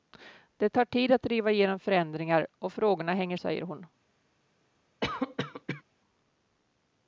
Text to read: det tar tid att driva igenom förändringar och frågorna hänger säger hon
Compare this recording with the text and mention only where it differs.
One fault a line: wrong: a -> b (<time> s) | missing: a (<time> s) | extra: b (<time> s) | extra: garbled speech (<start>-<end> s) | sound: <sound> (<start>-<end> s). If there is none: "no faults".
sound: cough (5.0-5.8 s)